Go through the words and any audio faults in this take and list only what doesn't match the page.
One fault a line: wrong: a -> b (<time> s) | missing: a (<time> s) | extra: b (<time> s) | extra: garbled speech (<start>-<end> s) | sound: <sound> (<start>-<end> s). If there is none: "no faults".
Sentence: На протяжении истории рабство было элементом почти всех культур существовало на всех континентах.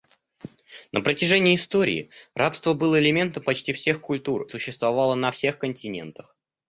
no faults